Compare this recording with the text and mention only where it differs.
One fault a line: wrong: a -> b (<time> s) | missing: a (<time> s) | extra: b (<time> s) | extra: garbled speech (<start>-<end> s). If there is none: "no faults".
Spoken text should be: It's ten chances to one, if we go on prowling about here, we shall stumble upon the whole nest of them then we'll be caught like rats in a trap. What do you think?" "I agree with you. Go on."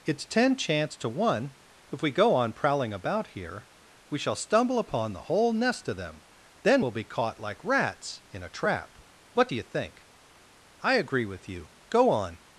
wrong: chances -> chance (0.6 s)